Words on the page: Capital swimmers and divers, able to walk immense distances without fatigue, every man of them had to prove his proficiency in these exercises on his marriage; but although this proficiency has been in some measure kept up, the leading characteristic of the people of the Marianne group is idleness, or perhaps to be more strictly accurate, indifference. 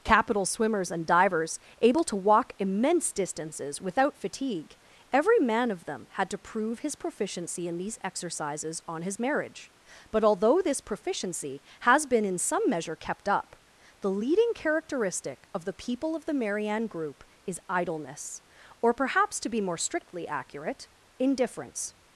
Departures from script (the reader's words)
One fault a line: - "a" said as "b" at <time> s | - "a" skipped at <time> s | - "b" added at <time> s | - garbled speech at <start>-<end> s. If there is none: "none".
none